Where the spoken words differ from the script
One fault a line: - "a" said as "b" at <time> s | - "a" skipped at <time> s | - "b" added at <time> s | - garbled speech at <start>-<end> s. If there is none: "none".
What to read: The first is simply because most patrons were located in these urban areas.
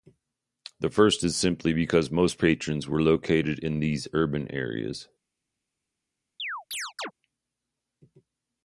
none